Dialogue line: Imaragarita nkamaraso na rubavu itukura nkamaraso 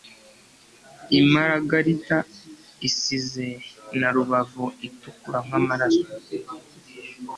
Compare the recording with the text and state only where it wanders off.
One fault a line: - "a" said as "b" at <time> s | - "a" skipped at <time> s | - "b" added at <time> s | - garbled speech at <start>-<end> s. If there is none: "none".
- "nkamaraso" said as "isize" at 2.9 s